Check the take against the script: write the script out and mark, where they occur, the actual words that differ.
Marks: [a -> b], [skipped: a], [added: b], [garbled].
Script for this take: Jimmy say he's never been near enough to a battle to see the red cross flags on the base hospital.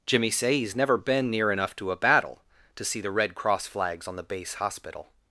Jimmy say he's never been near enough to a battle to see the red cross flags on the base hospital.